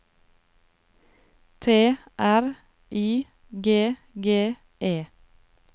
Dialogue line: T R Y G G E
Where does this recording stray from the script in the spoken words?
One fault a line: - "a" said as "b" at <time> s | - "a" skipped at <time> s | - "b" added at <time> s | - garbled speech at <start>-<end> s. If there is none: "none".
none